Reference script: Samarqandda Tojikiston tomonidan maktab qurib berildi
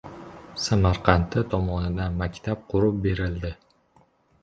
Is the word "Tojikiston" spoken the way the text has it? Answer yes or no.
no